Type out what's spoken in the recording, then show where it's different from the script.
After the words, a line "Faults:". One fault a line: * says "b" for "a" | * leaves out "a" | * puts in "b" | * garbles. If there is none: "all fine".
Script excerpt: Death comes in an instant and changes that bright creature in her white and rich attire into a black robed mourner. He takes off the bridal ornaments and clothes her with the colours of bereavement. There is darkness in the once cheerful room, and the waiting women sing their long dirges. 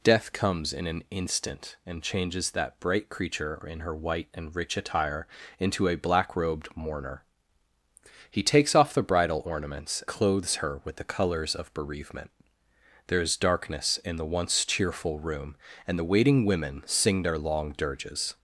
Death comes in an instant and changes that bright creature in her white and rich attire into a black robed mourner. He takes off the bridal ornaments clothes her with the colours of bereavement. There is darkness in the once cheerful room, and the waiting women sing their long dirges.
Faults:
* leaves out "and"